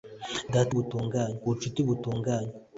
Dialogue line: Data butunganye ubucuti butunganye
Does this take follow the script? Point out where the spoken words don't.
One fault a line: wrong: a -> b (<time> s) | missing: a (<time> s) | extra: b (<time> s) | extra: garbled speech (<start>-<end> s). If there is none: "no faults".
no faults